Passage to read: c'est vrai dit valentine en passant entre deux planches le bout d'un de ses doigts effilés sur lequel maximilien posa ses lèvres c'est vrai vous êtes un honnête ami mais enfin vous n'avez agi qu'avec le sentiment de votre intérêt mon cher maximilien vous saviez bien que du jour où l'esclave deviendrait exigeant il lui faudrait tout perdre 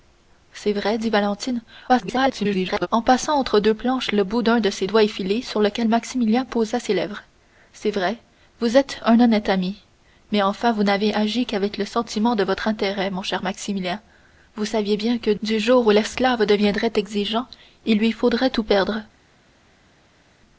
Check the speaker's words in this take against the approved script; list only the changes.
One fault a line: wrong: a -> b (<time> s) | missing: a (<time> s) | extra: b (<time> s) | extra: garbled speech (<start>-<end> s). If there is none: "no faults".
extra: garbled speech (1.9-2.9 s)